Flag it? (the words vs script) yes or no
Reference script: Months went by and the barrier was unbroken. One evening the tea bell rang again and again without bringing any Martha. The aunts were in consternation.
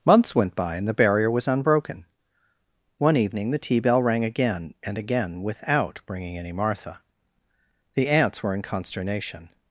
no